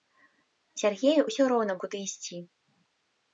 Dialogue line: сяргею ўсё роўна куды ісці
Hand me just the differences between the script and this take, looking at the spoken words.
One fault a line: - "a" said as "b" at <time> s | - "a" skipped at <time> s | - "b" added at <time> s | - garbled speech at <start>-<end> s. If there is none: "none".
none